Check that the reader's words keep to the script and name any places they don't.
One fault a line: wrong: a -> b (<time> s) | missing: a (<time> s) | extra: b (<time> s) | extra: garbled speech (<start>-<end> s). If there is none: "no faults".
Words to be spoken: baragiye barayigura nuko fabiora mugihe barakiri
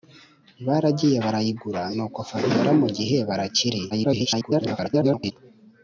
extra: garbled speech (3.9-5.3 s)